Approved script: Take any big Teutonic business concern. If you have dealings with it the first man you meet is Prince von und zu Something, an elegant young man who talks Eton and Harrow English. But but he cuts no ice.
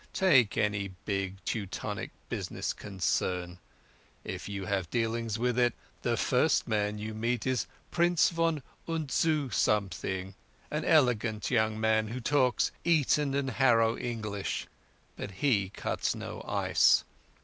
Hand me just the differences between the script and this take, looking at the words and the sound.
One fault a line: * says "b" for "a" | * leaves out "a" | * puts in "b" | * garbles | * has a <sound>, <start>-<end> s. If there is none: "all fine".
* leaves out "but"